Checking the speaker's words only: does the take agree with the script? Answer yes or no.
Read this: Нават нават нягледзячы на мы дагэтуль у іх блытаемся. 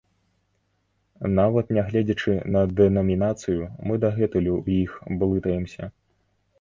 no